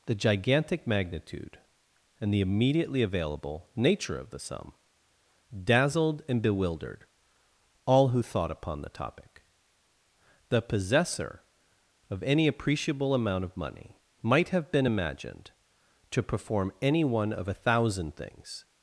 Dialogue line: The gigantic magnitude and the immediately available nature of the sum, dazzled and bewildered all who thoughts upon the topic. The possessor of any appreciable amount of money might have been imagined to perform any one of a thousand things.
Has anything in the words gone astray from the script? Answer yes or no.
yes